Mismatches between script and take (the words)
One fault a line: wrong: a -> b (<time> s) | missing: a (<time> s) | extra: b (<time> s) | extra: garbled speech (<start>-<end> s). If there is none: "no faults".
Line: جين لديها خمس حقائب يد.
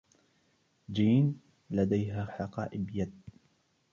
missing: خمس (2.2 s)